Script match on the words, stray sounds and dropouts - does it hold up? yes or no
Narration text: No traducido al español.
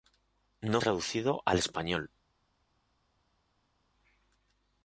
yes